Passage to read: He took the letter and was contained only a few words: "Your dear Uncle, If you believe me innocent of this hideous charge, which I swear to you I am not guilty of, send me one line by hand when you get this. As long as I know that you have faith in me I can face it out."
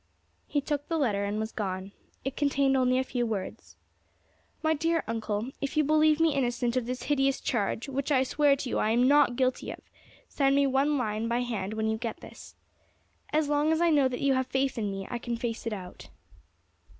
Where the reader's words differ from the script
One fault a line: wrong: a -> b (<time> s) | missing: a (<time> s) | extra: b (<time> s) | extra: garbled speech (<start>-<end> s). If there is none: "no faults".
extra: gone It (1.5 s)
wrong: Your -> My (4.6 s)